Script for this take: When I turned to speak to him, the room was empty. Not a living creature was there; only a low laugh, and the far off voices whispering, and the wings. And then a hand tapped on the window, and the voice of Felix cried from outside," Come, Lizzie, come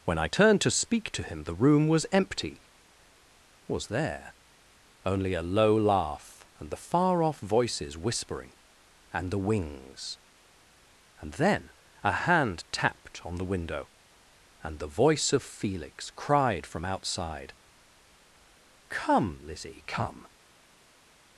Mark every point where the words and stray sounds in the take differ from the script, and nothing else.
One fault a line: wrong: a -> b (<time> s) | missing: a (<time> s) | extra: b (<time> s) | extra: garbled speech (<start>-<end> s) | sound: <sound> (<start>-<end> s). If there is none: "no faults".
missing: Not a living creature (2.6 s)